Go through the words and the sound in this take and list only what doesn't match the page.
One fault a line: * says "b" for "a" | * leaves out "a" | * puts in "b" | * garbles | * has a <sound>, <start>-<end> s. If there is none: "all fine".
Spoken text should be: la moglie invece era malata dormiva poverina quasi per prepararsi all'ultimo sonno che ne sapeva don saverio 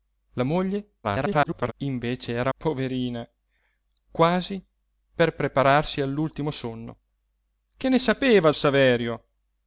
* garbles
* leaves out "malata dormiva"
* leaves out "don"